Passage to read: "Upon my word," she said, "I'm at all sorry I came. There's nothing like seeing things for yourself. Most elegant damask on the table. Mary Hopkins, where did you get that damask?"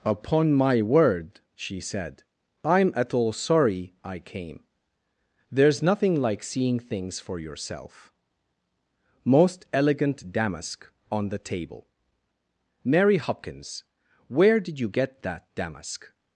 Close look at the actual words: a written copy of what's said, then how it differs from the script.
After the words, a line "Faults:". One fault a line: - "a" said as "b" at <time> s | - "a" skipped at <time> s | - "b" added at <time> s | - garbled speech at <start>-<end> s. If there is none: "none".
"Upon my word," she said, "I'm at all sorry I came. There's nothing like seeing things for yourself. Most elegant damask on the table. Mary Hopkins, where did you get that damask?"
Faults:
none